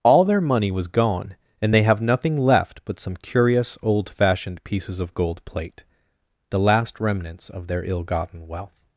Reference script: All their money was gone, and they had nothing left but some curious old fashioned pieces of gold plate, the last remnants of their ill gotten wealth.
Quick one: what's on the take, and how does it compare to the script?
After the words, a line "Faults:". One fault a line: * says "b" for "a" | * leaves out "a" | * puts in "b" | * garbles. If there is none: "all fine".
All their money was gone, and they have nothing left but some curious old fashioned pieces of gold plate, the last remnants of their ill gotten wealth.
Faults:
* says "have" for "had"